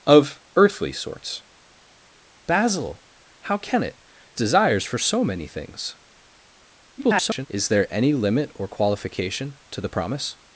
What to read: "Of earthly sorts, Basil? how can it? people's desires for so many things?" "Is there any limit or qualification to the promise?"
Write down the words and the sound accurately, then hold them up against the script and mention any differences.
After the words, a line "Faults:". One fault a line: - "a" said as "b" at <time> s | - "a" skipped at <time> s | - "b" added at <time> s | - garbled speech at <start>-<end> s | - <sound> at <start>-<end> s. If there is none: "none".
"Of earthly sorts, Basil? how can it? desires for so many things?" [garbled] "Is there any limit or qualification to the promise?"
Faults:
- "people's" skipped at 4.0 s
- garbled speech at 7.0-7.5 s